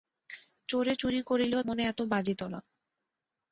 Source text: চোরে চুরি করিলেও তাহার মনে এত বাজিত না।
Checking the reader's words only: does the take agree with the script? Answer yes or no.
no